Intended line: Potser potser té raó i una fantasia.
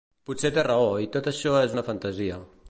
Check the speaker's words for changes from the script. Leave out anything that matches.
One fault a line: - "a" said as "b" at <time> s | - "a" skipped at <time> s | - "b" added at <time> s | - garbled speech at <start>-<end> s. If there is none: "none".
- "potser" skipped at 0.5 s
- "tot això és" added at 1.2 s